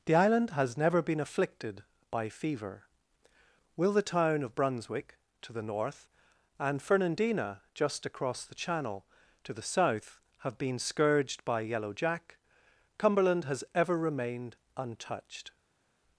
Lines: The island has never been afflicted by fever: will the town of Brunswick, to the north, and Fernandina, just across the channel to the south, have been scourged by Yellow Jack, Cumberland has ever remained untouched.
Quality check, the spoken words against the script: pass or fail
pass